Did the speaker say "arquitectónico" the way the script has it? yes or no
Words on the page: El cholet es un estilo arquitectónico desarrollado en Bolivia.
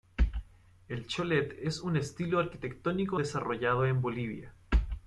yes